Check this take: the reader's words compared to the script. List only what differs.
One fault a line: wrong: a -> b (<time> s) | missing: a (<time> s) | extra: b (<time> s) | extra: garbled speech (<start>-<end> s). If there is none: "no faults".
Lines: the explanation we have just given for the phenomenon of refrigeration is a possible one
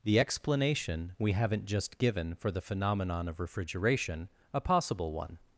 wrong: have -> haven't (1.3 s)
missing: is (4.3 s)